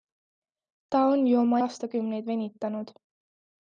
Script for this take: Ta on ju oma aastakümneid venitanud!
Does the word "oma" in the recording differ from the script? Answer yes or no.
no